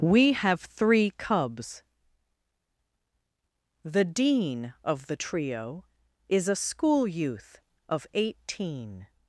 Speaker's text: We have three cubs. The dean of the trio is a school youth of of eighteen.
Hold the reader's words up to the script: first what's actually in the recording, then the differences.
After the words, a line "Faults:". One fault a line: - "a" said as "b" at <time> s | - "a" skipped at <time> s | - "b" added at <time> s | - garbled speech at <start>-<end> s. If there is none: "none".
We have three cubs. The dean of the trio is a school youth of eighteen.
Faults:
- "of" skipped at 8.0 s